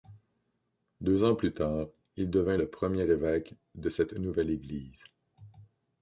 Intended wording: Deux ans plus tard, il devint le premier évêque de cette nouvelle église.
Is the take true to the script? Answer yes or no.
yes